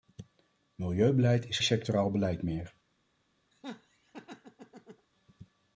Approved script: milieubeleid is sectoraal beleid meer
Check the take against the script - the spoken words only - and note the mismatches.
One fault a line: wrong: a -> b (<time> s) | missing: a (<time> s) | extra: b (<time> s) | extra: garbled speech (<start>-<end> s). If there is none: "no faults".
no faults